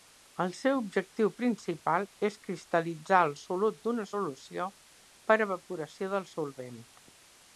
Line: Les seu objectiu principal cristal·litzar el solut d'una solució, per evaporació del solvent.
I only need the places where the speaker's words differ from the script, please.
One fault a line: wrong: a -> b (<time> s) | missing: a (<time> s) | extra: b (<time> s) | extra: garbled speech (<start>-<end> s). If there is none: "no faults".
wrong: Les -> El (0.4 s)
extra: és (2.3 s)